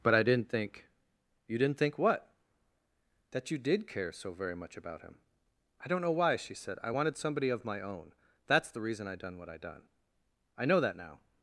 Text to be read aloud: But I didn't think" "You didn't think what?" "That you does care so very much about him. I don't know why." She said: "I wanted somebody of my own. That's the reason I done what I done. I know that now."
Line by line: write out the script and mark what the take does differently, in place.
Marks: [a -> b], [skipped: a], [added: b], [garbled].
But I didn't think" "You didn't think what?" "That you [does -> did] care so very much about him. I don't know why." She said: "I wanted somebody of my own. That's the reason I done what I done. I know that now."